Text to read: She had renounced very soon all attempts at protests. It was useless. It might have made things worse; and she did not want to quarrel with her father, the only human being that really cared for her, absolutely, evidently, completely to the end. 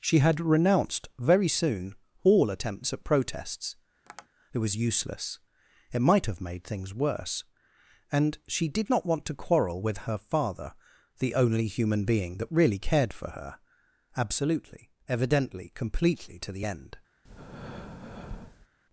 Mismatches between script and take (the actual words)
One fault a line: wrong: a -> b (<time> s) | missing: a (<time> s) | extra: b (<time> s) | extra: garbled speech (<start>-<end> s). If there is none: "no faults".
no faults